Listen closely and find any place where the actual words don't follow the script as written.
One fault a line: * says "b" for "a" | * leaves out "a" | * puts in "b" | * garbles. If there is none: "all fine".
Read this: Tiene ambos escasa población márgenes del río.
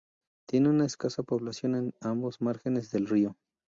* says "una" for "ambos"
* puts in "en ambos"